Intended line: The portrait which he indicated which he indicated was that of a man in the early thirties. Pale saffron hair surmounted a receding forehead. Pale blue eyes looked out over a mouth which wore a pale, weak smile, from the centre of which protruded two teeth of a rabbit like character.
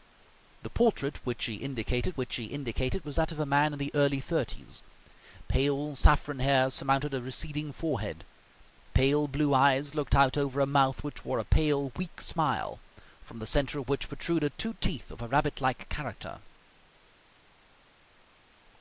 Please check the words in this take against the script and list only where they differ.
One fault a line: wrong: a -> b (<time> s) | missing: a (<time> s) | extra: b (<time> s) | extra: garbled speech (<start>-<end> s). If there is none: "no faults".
no faults